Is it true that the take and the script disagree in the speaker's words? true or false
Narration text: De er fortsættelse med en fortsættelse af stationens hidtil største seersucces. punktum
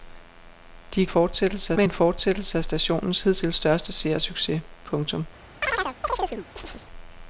false